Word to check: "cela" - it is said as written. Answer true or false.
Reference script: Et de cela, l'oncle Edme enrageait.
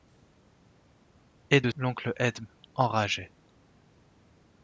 false